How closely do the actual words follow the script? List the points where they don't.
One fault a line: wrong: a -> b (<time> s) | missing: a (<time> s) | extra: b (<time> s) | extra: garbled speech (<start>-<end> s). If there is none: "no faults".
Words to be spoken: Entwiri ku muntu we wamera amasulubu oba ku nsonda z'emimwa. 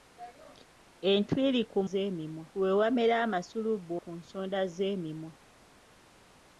wrong: muntu -> z'emimwa (1.9 s)
missing: oba (3.9 s)